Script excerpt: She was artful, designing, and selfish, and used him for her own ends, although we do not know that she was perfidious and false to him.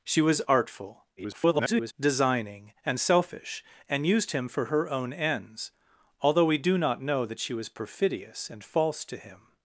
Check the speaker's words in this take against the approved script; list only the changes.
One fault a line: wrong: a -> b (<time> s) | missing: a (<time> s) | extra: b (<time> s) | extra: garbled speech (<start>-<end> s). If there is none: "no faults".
extra: garbled speech (1.2-1.9 s)